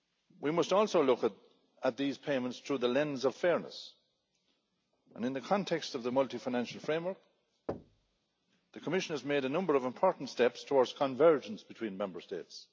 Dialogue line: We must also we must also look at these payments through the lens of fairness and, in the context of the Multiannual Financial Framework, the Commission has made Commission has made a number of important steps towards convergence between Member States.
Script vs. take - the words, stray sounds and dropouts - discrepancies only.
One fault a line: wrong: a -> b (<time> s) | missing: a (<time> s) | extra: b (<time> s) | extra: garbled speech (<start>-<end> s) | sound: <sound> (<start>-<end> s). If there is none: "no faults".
missing: we must also (1.0 s)
sound: thud (7.7-8.2 s)
missing: Commission has made (9.4 s)